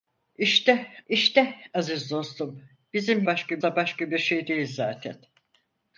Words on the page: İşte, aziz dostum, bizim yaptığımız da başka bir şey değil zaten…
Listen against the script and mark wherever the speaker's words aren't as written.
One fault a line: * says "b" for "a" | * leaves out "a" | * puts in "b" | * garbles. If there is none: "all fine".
* puts in "i̇şte"
* says "başka" for "yaptığımız"